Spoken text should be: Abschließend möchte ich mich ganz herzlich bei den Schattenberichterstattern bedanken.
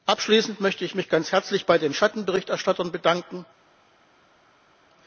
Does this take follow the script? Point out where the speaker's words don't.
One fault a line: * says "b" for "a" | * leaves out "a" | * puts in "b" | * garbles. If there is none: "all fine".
all fine